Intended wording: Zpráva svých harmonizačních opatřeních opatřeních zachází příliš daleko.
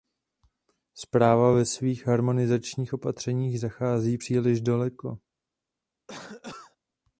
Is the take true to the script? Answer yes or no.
no